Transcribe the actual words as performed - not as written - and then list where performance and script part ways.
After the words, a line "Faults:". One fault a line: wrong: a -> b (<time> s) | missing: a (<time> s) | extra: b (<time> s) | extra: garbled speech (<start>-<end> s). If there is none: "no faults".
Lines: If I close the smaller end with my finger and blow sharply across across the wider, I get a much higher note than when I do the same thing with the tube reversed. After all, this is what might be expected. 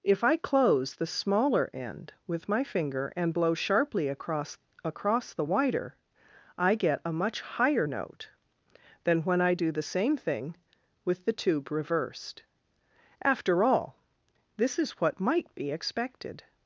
If I close the smaller end with my finger and blow sharply across across the wider, I get a much higher note than when I do the same thing with the tube reversed. After all, this is what might be expected.
Faults:
no faults